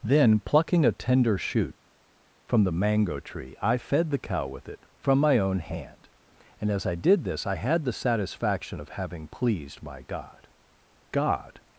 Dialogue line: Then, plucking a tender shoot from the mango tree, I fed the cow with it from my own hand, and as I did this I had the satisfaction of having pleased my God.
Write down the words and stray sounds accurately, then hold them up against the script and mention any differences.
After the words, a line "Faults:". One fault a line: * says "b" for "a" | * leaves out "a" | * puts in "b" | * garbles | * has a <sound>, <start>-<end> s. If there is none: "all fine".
Then, plucking a tender shoot from the mango tree, I fed the cow with it from my own hand, and as I did this I had the satisfaction of having pleased my God God.
Faults:
* puts in "God"